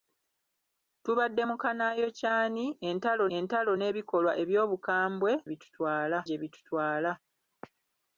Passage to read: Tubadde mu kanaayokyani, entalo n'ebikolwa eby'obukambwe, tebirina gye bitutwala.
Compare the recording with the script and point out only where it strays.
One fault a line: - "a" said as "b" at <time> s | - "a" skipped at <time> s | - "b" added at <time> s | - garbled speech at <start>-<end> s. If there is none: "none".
- "entalo" added at 3.4 s
- "tebirina" said as "bitutwala" at 5.5 s